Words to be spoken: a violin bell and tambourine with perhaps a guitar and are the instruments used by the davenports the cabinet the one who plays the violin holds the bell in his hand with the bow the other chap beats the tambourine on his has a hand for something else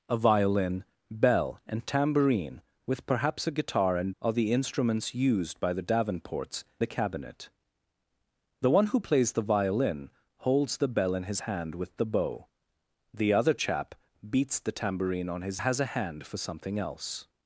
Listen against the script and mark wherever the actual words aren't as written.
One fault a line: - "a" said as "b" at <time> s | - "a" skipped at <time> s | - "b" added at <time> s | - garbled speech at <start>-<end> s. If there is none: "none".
none